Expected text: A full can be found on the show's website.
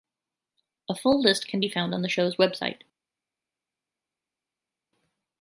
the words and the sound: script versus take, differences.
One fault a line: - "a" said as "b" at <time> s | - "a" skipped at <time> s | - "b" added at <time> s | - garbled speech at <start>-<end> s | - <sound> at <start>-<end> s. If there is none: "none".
- "list" added at 1.2 s